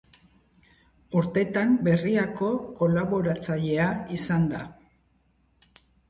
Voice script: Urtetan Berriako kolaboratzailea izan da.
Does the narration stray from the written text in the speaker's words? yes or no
no